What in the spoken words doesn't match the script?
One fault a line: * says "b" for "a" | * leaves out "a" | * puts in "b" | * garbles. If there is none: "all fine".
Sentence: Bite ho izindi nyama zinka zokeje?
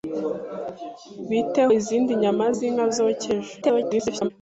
* leaves out "ho"
* garbles